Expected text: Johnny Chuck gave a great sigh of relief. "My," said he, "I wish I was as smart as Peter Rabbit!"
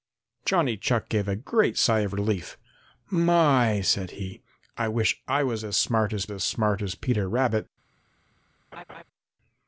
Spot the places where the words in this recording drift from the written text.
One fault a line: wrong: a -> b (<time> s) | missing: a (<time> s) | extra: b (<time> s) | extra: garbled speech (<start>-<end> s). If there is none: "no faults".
extra: as smart as (6.3 s)